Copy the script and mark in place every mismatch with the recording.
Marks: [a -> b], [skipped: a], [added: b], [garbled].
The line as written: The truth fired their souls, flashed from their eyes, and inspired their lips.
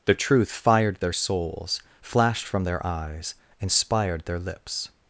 The truth fired their souls, flashed from their eyes, [skipped: and] inspired their lips.